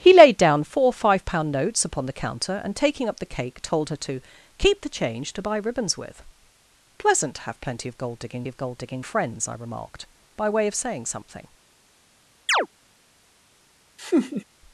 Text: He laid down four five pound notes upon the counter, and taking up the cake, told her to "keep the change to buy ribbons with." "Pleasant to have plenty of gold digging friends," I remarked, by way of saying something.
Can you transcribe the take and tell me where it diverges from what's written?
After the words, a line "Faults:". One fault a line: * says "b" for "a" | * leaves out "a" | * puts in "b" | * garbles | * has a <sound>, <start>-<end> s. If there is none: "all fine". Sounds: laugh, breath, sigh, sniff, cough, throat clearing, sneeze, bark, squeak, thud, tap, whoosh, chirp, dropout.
He laid down four five pound notes upon the counter, and taking up the cake, told her to "keep the change to buy ribbons with." "Pleasant to have plenty of gold digging of gold digging friends," I remarked, by way of saying something.
Faults:
* puts in "of gold digging"
* has a chirp, 12.5-12.7 s
* has a laugh, 14.0-14.4 s